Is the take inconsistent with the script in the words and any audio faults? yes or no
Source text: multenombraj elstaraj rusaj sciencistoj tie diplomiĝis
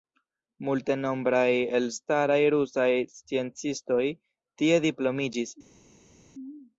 no